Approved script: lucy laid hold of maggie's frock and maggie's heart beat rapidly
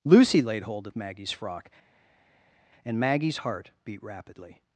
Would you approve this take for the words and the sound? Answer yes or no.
yes